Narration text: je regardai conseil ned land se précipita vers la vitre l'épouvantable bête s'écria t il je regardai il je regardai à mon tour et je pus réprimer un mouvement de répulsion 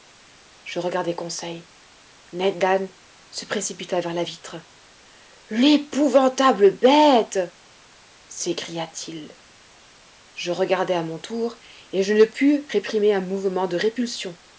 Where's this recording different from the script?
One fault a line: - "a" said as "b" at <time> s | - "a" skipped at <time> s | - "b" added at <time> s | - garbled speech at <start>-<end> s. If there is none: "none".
- "il je regardai" skipped at 10.9 s
- "ne" added at 12.1 s